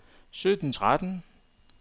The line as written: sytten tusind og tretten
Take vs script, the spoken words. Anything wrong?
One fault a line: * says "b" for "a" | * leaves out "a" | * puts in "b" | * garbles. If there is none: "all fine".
* leaves out "tusind og"